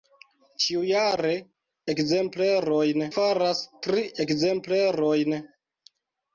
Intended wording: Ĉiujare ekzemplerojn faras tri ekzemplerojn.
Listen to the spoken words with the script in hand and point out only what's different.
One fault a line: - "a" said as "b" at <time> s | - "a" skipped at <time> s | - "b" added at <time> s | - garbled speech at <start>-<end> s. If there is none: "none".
none